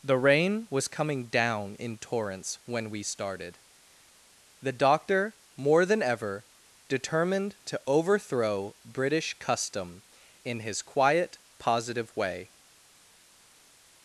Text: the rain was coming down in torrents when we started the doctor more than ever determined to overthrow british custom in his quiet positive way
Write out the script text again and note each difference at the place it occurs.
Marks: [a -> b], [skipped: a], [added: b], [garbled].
the rain was coming down in torrents when we started the doctor more than ever determined to overthrow british custom in his quiet positive way